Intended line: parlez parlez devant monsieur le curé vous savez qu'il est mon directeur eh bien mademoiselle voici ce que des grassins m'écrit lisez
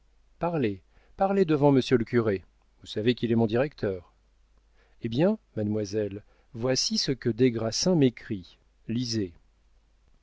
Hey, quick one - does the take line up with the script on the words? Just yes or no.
yes